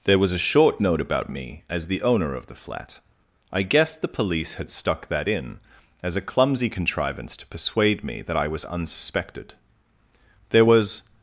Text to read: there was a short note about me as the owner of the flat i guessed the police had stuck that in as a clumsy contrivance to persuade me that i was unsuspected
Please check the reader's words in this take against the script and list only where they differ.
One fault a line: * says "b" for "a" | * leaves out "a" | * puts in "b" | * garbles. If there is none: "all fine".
* puts in "there was"